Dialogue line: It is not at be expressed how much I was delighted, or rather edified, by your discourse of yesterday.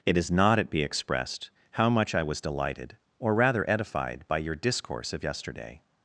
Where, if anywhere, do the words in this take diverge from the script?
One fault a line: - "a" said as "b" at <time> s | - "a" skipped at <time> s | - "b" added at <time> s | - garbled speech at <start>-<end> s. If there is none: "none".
none